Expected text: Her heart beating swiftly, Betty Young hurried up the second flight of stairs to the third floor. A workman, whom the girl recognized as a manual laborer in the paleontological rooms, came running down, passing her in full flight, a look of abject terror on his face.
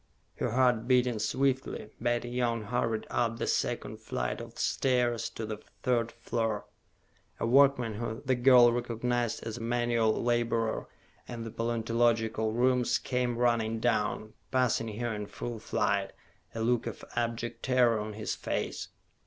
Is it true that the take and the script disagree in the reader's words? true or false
false